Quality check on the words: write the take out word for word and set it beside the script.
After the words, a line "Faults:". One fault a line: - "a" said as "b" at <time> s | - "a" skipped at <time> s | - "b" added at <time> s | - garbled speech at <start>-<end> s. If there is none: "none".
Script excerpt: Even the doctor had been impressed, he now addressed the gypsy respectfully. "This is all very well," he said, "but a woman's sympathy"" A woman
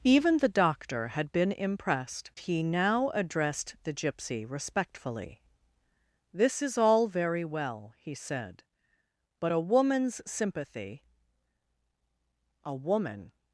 Even the doctor had been impressed, he now addressed the gypsy respectfully. "This is all very well," he said, "but a woman's sympathy"" A woman
Faults:
none